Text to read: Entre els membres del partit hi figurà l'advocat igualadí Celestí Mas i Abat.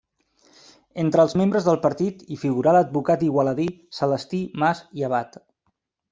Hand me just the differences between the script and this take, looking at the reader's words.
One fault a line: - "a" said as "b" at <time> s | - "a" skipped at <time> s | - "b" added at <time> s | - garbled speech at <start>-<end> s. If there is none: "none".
none